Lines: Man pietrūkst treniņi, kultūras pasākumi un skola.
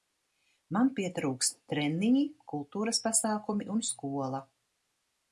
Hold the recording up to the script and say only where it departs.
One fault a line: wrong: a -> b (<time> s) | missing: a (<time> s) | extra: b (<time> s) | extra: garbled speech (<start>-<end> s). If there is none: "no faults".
no faults